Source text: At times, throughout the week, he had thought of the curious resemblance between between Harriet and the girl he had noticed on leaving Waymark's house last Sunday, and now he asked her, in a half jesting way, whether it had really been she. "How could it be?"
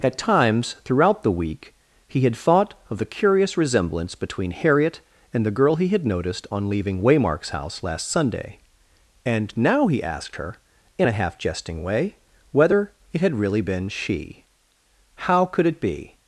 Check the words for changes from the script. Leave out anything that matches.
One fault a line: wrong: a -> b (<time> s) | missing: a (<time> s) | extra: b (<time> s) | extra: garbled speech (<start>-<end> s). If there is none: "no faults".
missing: between (4.5 s)